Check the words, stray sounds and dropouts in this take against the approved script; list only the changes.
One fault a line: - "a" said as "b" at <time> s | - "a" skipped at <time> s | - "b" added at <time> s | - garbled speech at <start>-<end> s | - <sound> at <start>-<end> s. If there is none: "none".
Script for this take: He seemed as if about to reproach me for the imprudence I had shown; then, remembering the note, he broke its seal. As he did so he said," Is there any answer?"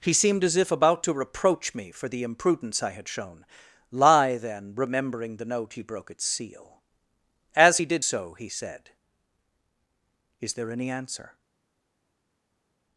- "lie" added at 3.9 s